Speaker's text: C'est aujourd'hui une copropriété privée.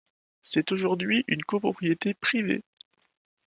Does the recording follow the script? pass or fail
pass